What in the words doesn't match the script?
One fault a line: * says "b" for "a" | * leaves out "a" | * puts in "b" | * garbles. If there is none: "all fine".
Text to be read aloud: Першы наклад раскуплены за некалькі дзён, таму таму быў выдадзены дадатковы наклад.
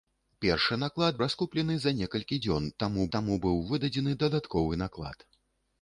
all fine